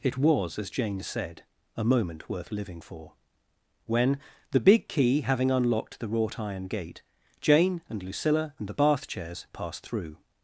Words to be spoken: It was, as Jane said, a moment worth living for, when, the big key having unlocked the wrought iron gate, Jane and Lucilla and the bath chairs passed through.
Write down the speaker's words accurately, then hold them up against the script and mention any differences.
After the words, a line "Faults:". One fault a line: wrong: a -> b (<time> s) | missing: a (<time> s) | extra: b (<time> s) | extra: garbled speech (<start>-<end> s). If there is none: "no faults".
It was, as Jane said, a moment worth living for, when, the big key having unlocked the wrought iron gate, Jane and Lucilla and the bath chairs passed through.
Faults:
no faults